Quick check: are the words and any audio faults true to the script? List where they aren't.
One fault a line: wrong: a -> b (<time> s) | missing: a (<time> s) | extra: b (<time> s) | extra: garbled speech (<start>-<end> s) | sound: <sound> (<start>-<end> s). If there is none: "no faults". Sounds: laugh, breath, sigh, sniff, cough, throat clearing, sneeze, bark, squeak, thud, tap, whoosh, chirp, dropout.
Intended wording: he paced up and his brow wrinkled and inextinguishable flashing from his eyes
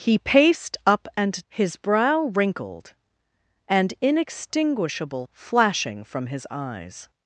no faults